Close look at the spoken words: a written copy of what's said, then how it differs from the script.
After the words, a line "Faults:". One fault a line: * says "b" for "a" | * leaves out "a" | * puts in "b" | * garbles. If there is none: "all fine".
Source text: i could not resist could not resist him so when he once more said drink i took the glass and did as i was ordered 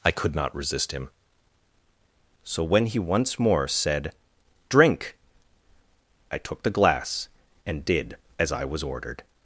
i could not resist him so when he once more said drink i took the glass and did as i was ordered
Faults:
* leaves out "could not resist"